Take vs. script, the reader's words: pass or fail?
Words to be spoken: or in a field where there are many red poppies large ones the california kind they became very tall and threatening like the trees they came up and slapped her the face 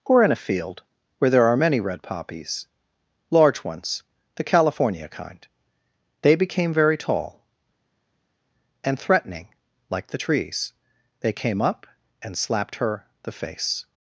pass